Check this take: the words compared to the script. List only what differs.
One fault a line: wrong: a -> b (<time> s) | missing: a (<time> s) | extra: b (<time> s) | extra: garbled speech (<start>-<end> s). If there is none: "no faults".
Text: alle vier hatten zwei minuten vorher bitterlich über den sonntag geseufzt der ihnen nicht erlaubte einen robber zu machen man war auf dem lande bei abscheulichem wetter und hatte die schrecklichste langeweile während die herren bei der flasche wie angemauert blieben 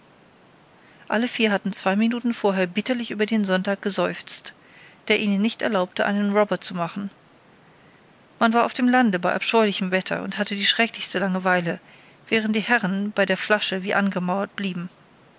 no faults